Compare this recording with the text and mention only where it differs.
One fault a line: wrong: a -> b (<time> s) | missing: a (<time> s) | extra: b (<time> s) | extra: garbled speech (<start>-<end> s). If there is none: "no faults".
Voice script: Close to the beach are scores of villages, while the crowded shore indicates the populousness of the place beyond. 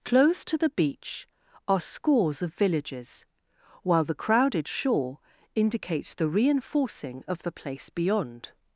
wrong: populousness -> reinforcing (6.3 s)